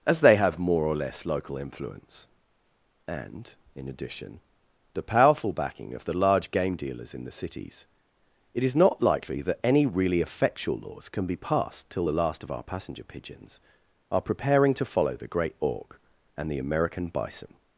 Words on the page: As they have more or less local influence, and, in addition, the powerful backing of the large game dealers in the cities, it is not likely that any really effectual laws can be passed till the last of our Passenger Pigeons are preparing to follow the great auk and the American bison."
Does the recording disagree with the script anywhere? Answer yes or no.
no